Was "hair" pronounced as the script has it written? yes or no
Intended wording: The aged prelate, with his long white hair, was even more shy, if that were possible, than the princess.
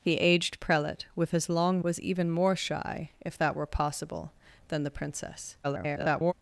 no